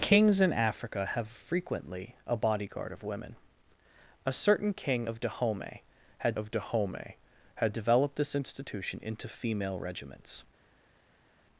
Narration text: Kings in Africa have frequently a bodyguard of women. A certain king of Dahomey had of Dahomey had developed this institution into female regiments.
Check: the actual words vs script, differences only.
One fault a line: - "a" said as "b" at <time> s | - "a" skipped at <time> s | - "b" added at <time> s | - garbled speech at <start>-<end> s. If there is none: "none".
none